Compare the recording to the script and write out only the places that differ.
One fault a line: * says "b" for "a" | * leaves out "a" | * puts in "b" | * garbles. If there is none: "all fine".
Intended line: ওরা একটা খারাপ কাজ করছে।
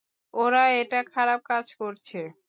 all fine